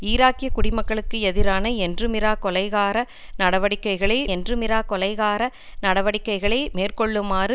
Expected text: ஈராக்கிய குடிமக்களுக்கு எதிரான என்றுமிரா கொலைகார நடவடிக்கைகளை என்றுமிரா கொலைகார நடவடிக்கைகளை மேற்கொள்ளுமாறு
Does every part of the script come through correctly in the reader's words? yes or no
yes